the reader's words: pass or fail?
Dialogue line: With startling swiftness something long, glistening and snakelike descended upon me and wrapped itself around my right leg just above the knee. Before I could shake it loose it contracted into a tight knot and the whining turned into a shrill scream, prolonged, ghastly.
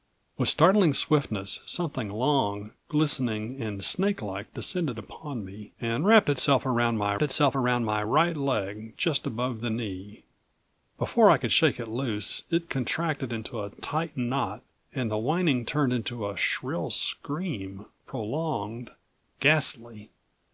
fail